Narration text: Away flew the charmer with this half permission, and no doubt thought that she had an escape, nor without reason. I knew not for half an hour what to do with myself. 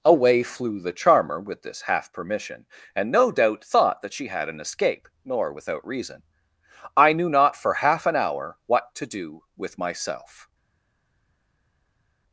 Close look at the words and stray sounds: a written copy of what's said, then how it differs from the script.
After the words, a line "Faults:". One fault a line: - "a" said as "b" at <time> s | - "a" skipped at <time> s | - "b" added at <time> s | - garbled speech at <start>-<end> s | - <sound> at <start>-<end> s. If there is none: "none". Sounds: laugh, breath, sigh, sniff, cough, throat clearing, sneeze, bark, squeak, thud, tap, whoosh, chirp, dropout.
Away flew the charmer with this half permission, and no doubt thought that she had an escape, nor without reason. I knew not for half an hour what to do with myself.
Faults:
none